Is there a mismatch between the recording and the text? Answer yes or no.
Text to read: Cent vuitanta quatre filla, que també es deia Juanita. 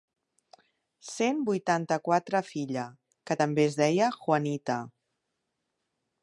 no